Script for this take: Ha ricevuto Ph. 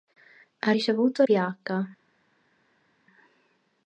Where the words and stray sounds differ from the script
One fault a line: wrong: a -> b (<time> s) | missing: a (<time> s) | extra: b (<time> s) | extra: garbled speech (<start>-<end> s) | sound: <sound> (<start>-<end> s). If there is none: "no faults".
no faults